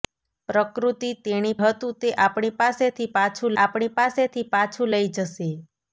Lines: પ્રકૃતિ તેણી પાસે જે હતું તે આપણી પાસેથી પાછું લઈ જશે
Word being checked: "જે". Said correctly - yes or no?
no